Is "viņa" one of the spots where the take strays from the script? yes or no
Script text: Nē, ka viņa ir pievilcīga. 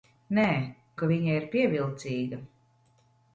no